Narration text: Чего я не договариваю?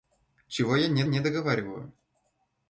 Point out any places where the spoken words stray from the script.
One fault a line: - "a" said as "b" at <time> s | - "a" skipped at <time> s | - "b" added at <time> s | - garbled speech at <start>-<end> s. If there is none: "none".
- "не" added at 1.0 s